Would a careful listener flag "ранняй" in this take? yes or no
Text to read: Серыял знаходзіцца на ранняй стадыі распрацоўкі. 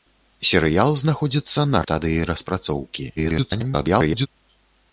yes